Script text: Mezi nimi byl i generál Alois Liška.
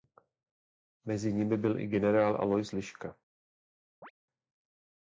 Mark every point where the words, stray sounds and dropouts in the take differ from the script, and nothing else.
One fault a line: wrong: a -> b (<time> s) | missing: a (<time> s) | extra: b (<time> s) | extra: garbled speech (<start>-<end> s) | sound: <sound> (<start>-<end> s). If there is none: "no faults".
sound: chirp (4.0-4.1 s)